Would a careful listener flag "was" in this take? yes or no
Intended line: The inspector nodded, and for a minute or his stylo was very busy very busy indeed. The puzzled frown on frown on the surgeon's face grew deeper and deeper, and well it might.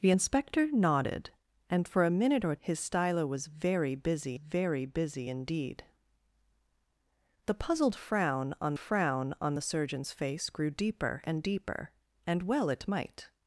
no